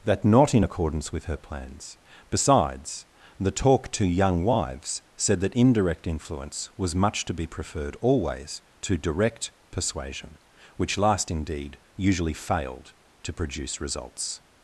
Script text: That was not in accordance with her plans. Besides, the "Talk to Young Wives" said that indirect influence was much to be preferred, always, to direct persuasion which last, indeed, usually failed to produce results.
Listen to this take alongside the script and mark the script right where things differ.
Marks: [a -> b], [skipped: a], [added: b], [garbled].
That [skipped: was] not in accordance with her plans. Besides, the "Talk to Young Wives" said that indirect influence was much to be preferred, always, to direct persuasion which last, indeed, usually failed to produce results.